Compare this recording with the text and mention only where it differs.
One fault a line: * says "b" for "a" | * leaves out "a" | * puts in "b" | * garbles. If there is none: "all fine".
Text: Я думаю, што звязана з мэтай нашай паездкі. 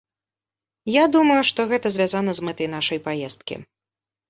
* puts in "гэта"